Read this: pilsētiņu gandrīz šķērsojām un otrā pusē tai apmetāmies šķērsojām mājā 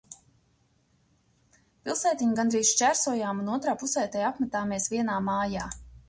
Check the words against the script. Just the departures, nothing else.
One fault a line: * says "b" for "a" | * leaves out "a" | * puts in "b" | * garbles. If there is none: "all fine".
* says "vienā" for "šķērsojām"